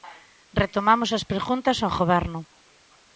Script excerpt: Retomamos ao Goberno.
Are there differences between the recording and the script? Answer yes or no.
yes